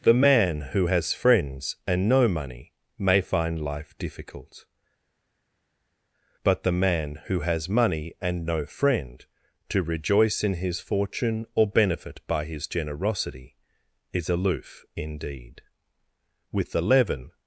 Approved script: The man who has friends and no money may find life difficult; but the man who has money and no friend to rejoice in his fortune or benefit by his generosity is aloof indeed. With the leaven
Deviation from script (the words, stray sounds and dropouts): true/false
false